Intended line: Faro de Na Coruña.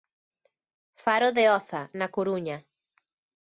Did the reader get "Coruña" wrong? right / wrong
right